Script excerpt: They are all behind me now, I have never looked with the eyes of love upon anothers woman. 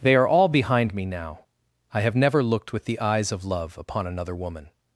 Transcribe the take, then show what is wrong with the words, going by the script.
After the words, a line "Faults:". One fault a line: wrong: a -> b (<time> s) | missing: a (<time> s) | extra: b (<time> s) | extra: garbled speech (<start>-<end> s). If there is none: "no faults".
They are all behind me now, I have never looked with the eyes of love upon another woman.
Faults:
wrong: anothers -> another (4.1 s)